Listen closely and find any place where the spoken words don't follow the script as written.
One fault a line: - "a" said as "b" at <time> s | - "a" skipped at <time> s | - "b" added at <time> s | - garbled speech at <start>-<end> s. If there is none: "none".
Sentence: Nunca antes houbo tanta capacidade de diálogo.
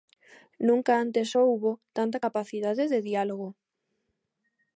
none